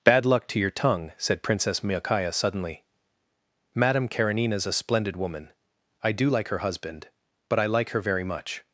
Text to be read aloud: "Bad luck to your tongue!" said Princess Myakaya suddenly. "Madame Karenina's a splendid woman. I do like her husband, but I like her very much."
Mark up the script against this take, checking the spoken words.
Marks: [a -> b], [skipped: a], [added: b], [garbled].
"Bad luck to your tongue!" said Princess Myakaya suddenly. "Madame Karenina's a splendid woman. I do like her husband, but I like her very much."